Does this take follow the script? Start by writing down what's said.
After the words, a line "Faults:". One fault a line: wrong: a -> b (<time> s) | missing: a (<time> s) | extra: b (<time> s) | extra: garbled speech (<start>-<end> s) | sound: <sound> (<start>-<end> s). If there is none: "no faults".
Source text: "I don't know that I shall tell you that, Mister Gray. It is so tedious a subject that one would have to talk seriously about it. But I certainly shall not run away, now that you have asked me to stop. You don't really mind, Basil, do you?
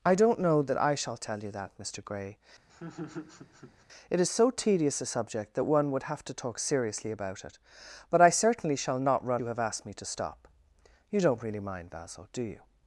"I don't know that I shall tell you that, Mister Gray. It is so tedious a subject that one would have to talk seriously about it. But I certainly shall not run you have asked me to stop. You don't really mind, Basil, do you?
Faults:
sound: laugh (2.7-3.8 s)
missing: away now that (9.4 s)